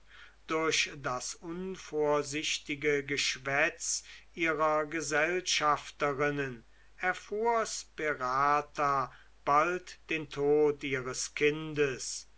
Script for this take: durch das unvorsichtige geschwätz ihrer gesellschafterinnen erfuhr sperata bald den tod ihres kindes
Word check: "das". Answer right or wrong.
right